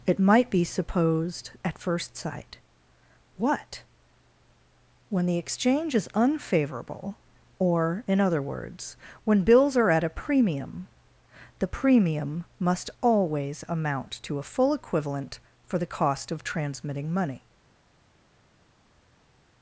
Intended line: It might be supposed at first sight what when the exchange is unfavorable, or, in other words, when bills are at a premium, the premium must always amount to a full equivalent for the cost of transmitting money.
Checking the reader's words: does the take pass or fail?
pass